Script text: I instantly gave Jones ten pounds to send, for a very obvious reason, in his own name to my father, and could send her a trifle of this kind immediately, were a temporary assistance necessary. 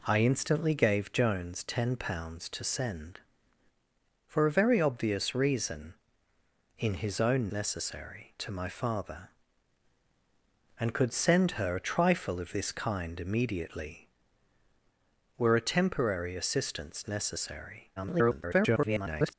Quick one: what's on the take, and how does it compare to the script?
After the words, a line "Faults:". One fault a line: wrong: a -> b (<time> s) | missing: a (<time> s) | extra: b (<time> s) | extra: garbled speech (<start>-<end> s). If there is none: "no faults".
I instantly gave Jones ten pounds to send, for a very obvious reason, in his own necessary to my father, and could send her a trifle of this kind immediately, were a temporary assistance necessary. [garbled]
Faults:
wrong: name -> necessary (7.5 s)
extra: garbled speech (18.0-19.3 s)